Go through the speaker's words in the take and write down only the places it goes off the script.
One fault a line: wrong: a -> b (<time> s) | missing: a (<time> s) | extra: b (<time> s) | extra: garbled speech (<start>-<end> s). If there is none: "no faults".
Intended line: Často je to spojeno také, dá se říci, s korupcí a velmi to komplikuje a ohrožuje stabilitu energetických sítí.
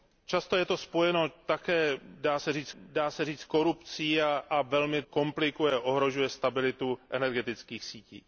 extra: dá se říci (2.8 s)
missing: to (5.0 s)